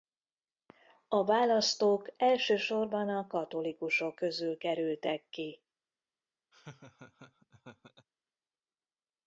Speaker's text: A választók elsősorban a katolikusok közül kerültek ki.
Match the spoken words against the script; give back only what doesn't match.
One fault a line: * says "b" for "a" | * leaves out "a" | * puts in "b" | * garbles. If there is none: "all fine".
all fine